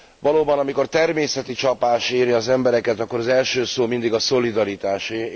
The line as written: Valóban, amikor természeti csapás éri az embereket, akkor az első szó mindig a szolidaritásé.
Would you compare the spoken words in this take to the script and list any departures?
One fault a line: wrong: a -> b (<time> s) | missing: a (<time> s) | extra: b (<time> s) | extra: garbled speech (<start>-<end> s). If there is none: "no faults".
no faults